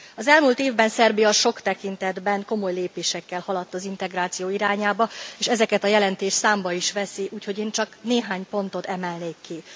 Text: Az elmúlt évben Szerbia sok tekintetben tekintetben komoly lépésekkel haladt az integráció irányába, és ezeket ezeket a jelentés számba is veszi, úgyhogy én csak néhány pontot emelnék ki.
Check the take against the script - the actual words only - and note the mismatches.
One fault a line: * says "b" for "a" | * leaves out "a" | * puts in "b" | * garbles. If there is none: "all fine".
* leaves out "tekintetben"
* leaves out "ezeket"